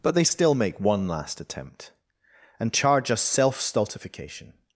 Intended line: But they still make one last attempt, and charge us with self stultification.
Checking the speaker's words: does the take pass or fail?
fail